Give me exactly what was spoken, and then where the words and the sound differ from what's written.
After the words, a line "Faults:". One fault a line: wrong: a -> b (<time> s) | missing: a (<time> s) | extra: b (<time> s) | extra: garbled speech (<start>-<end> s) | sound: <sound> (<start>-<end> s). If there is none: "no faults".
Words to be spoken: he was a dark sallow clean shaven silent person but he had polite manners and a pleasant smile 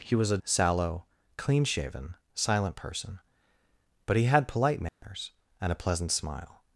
he was a sallow clean shaven silent person but he had polite manners and a pleasant smile
Faults:
missing: dark (0.4 s)
sound: dropout (4.9-5.0 s)